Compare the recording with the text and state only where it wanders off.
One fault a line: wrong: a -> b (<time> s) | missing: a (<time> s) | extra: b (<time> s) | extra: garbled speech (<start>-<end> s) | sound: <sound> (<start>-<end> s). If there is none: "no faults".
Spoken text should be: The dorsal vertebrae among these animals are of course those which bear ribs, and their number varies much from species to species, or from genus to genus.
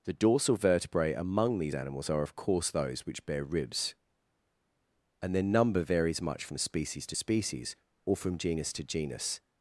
no faults